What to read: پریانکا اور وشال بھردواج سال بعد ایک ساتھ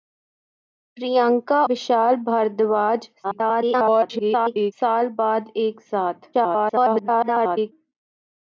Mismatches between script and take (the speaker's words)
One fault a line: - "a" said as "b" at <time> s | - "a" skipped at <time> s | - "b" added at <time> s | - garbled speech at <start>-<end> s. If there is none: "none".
- "اور" skipped at 1.6 s
- garbled speech at 3.2-4.7 s
- garbled speech at 6.3-7.7 s